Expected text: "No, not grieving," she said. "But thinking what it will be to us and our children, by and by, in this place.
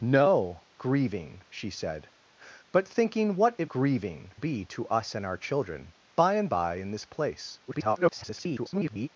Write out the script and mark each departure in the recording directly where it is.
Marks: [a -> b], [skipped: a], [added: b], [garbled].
"No, [skipped: not] grieving," she said. "But thinking what it [will -> grieving] be to us and our children, by and by, in this place. [garbled]